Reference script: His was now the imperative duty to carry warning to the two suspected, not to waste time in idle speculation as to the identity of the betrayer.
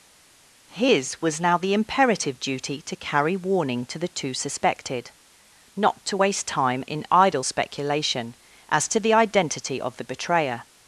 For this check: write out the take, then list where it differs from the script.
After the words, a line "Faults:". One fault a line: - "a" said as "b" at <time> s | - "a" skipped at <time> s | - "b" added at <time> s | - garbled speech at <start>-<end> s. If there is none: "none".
His was now the imperative duty to carry warning to the two suspected, not to waste time in idle speculation as to the identity of the betrayer.
Faults:
none